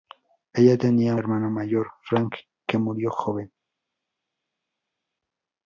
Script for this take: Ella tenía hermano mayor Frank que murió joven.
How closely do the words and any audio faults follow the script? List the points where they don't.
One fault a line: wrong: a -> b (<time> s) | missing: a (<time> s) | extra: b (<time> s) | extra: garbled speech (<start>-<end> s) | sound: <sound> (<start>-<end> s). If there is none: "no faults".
no faults